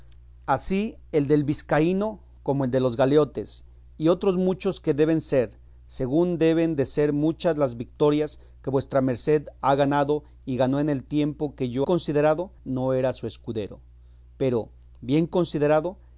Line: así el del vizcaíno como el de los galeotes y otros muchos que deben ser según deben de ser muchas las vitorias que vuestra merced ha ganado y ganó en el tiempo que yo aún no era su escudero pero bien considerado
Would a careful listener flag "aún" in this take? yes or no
yes